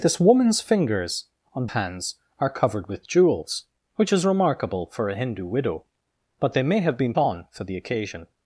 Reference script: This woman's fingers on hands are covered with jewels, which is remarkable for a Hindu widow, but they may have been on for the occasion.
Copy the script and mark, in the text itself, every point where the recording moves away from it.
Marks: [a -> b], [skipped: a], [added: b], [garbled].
This woman's fingers on hands are covered with jewels, which is remarkable for a Hindu widow, but they may have been on for the occasion.